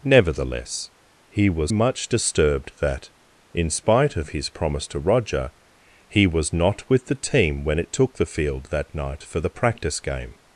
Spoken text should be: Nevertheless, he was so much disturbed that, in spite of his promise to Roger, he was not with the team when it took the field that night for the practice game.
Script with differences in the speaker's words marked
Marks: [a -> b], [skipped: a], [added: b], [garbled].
Nevertheless, he was [skipped: so] much disturbed that, in spite of his promise to Roger, he was not with the team when it took the field that night for the practice game.